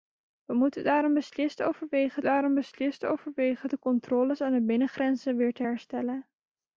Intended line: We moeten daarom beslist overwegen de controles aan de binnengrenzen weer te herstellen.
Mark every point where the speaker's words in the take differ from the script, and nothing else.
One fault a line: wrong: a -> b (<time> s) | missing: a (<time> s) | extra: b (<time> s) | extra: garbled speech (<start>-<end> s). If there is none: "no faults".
extra: daarom beslist overwegen (2.2 s)